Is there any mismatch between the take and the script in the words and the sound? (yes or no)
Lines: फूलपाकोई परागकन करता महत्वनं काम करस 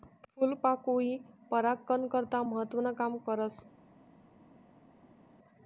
no